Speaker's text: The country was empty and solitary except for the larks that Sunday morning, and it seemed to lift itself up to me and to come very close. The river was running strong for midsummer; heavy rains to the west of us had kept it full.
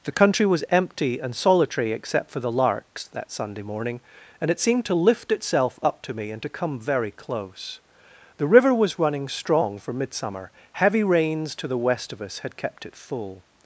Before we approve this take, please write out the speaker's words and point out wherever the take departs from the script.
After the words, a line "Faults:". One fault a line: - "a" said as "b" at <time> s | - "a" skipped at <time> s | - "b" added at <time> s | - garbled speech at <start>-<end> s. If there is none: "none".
The country was empty and solitary except for the larks that Sunday morning, and it seemed to lift itself up to me and to come very close. The river was running strong for midsummer; heavy rains to the west of us had kept it full.
Faults:
none